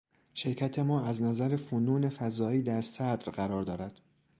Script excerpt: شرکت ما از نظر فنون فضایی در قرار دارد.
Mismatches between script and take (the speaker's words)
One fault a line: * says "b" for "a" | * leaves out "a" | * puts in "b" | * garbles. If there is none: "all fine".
* puts in "صدر"